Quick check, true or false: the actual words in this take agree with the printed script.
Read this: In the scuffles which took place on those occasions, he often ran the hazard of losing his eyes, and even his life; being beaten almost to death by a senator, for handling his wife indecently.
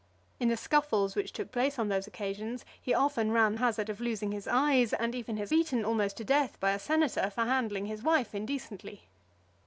false